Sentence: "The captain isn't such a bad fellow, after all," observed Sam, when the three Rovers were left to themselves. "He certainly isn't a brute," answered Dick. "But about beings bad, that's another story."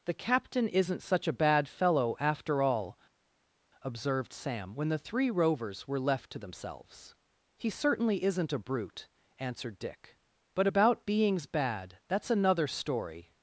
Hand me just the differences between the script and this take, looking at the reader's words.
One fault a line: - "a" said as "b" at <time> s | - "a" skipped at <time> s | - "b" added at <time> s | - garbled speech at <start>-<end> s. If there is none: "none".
none